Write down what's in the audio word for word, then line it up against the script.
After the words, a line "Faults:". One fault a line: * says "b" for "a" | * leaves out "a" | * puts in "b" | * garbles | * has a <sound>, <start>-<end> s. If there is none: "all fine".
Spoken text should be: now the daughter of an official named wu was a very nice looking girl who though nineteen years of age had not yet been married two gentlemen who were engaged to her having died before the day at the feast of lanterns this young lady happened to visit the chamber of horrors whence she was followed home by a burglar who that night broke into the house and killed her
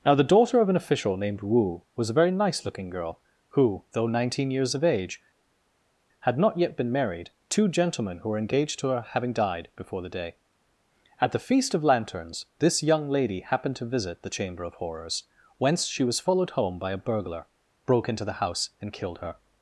now the daughter of an official named wu was a very nice looking girl who though nineteen years of age had not yet been married two gentlemen who were engaged to her having died before the day at the feast of lanterns this young lady happened to visit the chamber of horrors whence she was followed home by a burglar broke into the house and killed her
Faults:
* leaves out "who that night"